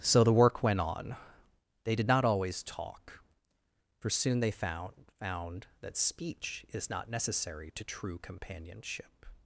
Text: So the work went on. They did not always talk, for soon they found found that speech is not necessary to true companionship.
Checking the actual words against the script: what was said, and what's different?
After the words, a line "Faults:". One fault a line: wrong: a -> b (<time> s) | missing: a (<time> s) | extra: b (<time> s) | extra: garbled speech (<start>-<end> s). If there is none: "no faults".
So the work went on. They did not always talk, for soon they found found that speech is not necessary to true companionship.
Faults:
no faults